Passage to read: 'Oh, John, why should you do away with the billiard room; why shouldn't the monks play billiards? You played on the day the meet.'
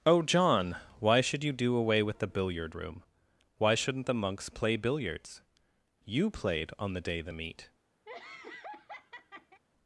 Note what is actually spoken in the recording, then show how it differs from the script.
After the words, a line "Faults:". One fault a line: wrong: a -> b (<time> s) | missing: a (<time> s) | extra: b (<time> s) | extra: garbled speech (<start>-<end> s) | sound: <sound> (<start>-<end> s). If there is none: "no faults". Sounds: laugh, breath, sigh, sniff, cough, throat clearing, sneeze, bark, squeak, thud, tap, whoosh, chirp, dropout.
'Oh, John, why should you do away with the billiard room; why shouldn't the monks play billiards? You played on the day the meet.'
Faults:
sound: laugh (8.1-9.6 s)